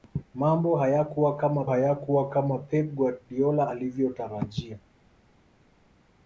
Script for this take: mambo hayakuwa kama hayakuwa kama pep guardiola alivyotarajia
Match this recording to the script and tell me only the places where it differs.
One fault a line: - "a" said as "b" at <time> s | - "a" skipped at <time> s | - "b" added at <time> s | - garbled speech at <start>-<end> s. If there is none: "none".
none